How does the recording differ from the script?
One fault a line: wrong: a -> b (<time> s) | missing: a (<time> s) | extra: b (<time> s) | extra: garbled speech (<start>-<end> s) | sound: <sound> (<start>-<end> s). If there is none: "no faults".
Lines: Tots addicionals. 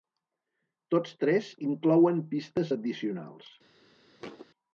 extra: tres inclouen pistes (1.2 s)
sound: thud (4.2-4.5 s)